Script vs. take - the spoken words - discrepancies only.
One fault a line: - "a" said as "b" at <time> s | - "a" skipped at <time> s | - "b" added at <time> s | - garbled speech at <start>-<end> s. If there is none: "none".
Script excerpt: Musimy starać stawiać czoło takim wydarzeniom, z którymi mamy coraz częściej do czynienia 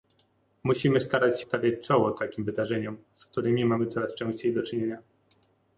none